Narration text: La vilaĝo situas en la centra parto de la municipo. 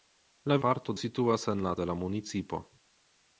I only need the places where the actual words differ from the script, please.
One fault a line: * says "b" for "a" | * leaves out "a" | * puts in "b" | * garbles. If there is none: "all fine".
* says "parto" for "vilaĝo"
* leaves out "centra parto"